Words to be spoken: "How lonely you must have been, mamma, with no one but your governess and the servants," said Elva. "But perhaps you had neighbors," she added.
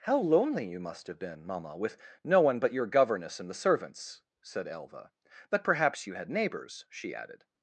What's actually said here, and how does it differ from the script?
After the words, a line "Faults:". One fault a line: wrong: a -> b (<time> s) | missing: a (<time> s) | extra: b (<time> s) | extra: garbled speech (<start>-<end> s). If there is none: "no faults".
"How lonely you must have been, mamma, with no one but your governess and the servants," said Elva. "But perhaps you had neighbors," she added.
Faults:
no faults